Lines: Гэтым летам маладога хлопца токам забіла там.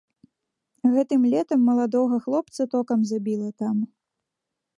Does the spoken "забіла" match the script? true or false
true